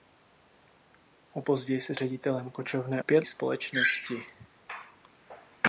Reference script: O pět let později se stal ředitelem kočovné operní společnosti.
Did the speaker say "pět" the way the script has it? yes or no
no